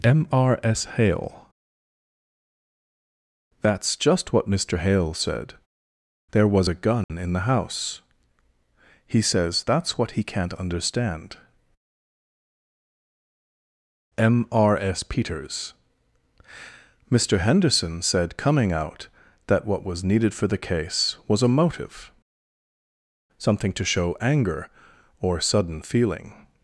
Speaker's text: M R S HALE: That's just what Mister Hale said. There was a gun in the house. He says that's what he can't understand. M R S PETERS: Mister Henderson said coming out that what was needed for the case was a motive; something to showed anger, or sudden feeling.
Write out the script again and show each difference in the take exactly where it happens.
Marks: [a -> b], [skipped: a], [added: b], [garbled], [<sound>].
M R S HALE: That's just what Mister Hale said. There was a gun [dropout] in the house. He says that's what he can't understand. M R S PETERS: Mister Henderson said coming out that what was needed for the case was a motive; something to [showed -> show] anger, or sudden feeling.